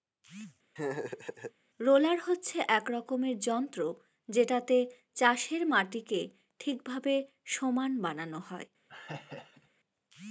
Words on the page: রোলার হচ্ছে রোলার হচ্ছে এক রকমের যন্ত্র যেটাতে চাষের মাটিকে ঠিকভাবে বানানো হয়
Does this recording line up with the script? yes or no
no